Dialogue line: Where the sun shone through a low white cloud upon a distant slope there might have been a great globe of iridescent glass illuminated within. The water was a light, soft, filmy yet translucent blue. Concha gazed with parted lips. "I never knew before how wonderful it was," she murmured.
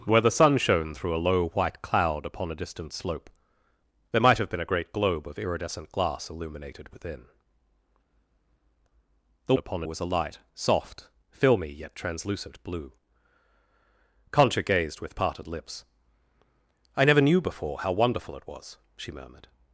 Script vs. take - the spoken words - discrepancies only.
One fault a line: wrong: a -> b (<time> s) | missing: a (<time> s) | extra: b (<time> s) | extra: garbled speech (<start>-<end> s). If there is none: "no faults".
wrong: water -> upon (9.6 s)